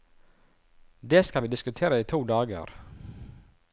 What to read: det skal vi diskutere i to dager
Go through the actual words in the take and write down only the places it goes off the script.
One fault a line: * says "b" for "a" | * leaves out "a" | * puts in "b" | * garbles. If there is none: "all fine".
all fine